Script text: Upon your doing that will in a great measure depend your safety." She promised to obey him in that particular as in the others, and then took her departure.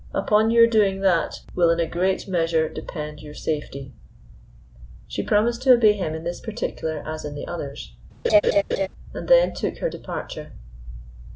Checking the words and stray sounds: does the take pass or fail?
fail